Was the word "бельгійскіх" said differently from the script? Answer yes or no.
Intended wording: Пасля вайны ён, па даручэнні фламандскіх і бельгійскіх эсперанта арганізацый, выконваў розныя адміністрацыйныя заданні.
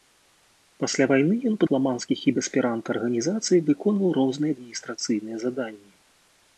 yes